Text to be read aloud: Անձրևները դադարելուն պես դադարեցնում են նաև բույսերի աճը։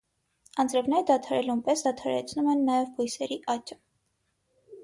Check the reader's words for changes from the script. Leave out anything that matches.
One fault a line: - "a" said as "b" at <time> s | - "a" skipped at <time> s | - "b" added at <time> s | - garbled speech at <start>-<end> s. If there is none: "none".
none